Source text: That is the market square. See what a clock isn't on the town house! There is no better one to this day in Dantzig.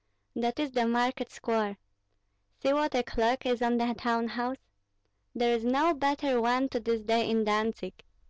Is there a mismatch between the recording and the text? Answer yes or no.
yes